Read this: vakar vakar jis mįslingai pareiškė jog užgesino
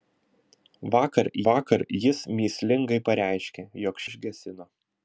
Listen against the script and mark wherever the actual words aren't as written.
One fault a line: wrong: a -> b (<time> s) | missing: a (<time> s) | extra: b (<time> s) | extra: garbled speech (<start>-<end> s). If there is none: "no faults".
no faults